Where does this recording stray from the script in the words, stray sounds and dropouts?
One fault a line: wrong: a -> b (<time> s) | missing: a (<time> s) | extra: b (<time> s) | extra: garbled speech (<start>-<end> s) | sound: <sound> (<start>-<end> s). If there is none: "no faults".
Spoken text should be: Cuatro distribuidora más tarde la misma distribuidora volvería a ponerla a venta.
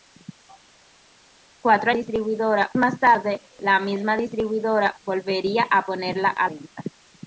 no faults